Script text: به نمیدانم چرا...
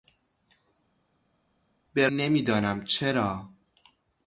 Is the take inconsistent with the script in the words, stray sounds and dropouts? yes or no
no